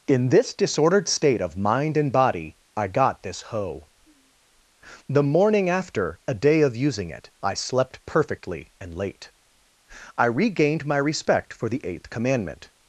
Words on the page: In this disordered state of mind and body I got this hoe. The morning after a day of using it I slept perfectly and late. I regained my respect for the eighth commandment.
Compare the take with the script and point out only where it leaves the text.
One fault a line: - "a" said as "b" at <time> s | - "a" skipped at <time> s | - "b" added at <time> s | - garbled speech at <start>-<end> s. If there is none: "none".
none